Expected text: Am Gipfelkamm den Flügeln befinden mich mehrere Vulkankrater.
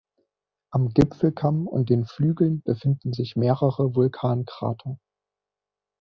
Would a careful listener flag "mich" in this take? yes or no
yes